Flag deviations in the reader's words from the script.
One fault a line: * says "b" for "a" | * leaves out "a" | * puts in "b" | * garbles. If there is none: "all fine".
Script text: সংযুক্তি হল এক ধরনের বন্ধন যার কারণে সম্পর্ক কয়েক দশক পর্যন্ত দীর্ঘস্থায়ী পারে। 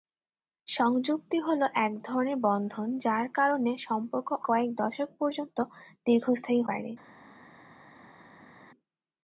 all fine